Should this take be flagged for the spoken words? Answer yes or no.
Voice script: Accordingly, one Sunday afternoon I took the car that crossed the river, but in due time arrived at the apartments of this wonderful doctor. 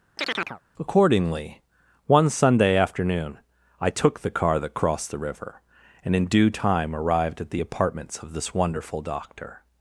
yes